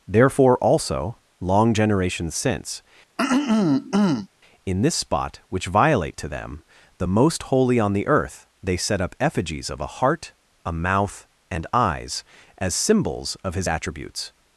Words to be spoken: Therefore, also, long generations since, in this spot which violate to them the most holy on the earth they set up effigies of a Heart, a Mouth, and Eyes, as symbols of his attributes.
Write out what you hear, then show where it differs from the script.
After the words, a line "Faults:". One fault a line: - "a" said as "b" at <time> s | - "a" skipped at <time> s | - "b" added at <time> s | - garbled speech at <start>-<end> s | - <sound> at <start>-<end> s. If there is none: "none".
Therefore, also, long generations since, in this spot which violate to them the most holy on the earth they set up effigies of a Heart, a Mouth, and Eyes, as symbols of his attributes.
Faults:
- throat clearing at 3.2-4.3 s